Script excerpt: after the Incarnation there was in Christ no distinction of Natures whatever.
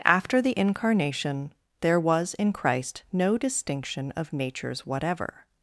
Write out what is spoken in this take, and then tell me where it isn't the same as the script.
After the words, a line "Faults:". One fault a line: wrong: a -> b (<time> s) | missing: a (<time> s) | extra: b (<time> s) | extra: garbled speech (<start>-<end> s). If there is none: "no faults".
after the Incarnation there was in Christ no distinction of Natures whatever.
Faults:
no faults